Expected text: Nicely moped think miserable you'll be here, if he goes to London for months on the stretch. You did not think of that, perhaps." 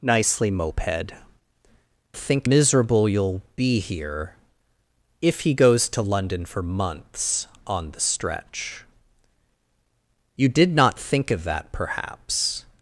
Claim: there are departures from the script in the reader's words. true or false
false